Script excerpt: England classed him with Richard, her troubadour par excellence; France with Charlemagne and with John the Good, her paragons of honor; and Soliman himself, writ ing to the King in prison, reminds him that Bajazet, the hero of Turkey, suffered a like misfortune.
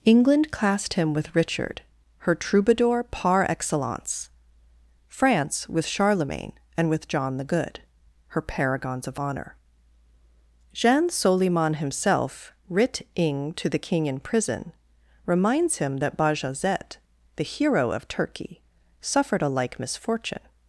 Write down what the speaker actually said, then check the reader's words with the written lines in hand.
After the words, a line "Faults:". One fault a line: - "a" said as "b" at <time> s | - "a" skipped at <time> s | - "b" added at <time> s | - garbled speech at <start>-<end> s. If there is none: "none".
England classed him with Richard, her troubadour par excellence; France with Charlemagne and with John the Good, her paragons of honor; jean Soliman himself, writ ing to the King in prison, reminds him that Bajazet, the hero of Turkey, suffered a like misfortune.
Faults:
- "and" said as "jean" at 10.7 s